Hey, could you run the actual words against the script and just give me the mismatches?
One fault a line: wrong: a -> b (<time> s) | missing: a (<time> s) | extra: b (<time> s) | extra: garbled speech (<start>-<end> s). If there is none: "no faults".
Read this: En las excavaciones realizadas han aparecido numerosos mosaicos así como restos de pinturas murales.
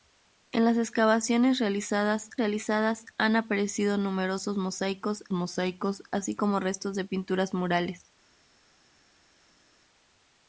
extra: realizadas (2.4 s)
extra: mosaicos (5.3 s)